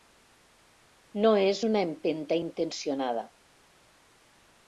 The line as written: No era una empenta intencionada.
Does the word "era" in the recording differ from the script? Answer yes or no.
yes